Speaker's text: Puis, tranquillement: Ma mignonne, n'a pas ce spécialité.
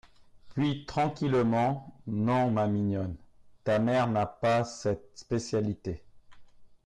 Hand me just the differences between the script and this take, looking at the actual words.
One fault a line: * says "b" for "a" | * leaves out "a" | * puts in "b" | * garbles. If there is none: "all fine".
* puts in "Non"
* puts in "ta mère"
* says "cette" for "ce"